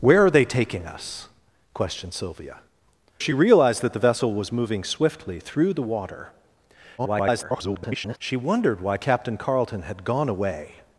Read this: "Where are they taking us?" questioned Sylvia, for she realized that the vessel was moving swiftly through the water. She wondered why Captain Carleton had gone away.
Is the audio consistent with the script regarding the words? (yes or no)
no